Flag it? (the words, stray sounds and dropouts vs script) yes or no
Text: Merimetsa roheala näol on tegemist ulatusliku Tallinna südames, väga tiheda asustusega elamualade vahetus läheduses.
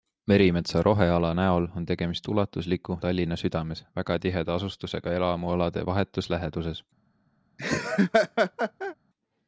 yes